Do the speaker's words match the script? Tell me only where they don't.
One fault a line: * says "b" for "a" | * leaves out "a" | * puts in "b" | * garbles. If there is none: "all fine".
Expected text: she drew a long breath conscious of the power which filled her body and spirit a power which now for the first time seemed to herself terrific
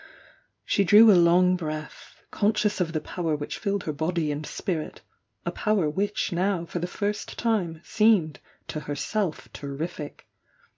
all fine